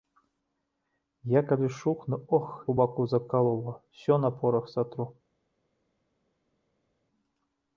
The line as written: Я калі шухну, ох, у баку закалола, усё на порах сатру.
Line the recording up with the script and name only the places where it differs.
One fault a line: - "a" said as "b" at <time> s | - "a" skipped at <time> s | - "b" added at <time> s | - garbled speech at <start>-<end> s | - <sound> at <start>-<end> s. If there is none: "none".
none